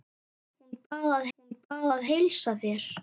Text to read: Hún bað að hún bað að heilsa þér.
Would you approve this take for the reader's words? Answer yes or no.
yes